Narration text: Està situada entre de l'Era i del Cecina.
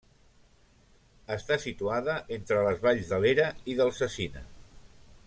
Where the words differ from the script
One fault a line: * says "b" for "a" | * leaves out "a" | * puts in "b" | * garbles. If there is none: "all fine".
* puts in "les valls"